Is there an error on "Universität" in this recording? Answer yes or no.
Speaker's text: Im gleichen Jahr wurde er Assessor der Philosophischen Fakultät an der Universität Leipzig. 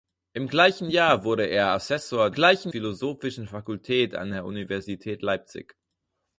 no